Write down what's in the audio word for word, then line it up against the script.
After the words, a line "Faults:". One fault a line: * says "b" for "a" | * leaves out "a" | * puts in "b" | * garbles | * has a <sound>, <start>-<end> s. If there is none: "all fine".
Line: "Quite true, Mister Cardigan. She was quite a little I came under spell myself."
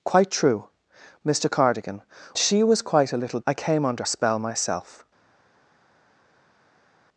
"Quite true, Mister Cardigan. She was quite a little I came under spell myself."
Faults:
all fine